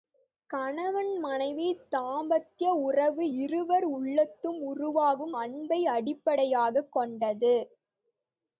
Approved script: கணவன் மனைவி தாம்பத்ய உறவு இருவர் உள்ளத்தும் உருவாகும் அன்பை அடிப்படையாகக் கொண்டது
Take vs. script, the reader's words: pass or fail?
pass